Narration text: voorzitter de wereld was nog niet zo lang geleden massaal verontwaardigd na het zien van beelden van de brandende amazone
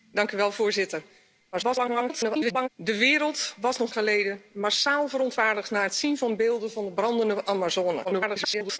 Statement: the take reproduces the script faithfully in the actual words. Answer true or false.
false